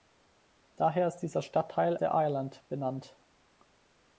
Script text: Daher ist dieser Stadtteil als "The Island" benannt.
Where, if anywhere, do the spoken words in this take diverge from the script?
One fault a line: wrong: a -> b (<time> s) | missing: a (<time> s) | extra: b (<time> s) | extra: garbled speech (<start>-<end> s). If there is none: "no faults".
missing: als (1.9 s)